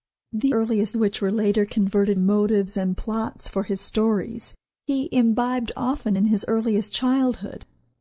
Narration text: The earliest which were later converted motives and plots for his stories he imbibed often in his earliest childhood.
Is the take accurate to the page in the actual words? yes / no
yes